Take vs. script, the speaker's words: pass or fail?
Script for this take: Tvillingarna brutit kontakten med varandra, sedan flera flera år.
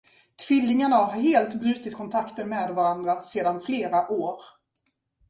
fail